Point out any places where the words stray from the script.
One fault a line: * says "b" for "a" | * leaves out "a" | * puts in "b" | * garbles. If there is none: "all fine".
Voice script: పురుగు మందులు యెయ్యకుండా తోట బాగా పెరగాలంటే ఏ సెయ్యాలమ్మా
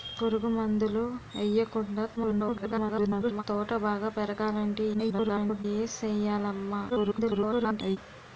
* garbles
* garbles
* garbles